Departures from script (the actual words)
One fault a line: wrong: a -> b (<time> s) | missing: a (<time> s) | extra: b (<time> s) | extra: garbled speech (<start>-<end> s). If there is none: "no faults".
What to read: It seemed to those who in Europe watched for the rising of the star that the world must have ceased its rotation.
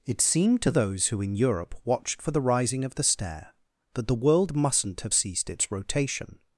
wrong: star -> stair (3.0 s)
wrong: must -> mustn't (4.5 s)